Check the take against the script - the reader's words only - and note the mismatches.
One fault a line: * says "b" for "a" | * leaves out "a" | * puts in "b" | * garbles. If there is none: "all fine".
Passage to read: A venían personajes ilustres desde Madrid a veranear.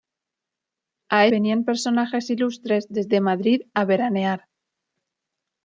all fine